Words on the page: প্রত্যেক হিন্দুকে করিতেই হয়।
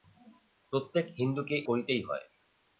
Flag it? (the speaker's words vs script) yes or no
no